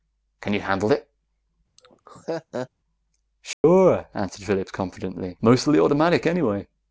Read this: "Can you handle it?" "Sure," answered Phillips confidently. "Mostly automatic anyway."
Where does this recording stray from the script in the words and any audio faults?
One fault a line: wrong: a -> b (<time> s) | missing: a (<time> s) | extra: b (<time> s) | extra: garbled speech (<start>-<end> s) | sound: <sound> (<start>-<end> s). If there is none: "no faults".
sound: laugh (1.8-2.7 s)
sound: dropout (3.5-3.6 s)